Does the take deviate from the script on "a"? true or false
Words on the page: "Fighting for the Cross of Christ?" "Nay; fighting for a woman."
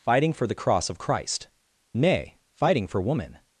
true